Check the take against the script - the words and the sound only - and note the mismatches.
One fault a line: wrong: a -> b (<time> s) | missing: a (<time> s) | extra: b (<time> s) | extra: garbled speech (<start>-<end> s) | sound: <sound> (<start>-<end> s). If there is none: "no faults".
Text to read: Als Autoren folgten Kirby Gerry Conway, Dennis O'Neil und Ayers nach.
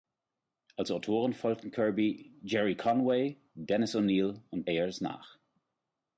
no faults